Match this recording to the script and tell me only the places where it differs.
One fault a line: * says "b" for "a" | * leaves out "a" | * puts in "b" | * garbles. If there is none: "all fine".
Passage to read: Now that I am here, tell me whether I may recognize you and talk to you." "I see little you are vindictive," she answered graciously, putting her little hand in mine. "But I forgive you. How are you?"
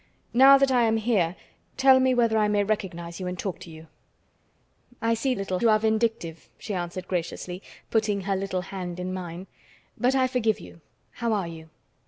all fine